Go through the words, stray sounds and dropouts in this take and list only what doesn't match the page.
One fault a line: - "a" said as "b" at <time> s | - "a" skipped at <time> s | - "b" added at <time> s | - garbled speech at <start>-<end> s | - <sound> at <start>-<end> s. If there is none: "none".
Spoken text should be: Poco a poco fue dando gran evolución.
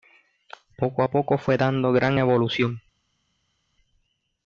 none